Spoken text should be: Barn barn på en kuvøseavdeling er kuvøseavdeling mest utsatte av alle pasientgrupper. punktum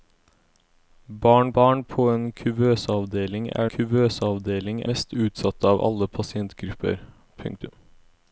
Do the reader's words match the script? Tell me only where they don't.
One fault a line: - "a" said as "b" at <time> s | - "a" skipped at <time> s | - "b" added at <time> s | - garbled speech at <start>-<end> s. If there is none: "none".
none